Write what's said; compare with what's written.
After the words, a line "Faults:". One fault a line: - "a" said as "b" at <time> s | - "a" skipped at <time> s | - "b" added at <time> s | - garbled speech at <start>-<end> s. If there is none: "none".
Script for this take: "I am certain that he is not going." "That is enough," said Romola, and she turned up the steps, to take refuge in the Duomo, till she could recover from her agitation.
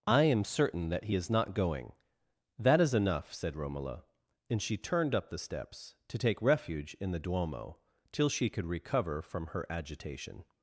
"I am certain that he is not going." "That is enough," said Romola, and she turned up the steps, to take refuge in the Duomo, till she could recover from her agitation.
Faults:
none